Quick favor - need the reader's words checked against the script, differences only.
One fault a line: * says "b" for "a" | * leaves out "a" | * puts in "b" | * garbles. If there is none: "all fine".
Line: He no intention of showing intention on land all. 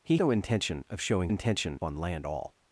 all fine